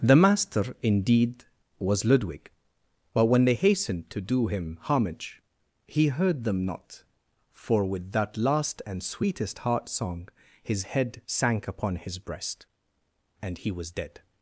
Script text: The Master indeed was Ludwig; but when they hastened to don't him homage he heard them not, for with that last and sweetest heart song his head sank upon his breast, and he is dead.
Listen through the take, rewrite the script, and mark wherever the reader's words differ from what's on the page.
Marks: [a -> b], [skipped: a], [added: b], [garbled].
The Master indeed was Ludwig; but when they hastened to [don't -> do] him homage he heard them not, for with that last and sweetest heart song his head sank upon his breast, and he [is -> was] dead.